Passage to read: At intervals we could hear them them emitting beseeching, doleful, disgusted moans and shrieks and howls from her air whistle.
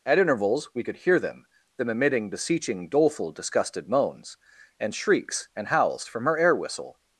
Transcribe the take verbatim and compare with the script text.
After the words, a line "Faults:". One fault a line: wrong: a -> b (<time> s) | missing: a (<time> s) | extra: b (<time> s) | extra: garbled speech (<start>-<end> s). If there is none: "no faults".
At intervals we could hear them them emitting beseeching, doleful, disgusted moans and shrieks and howls from her air whistle.
Faults:
no faults